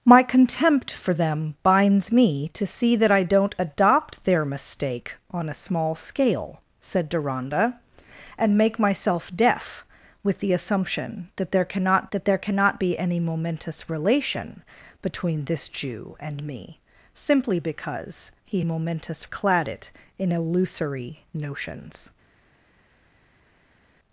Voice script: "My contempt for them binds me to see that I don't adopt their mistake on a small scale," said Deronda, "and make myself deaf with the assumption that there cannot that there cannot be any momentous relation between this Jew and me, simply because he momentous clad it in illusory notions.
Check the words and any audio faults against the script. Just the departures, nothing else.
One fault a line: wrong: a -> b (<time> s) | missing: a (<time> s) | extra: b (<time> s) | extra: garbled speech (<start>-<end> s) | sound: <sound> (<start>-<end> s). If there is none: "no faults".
no faults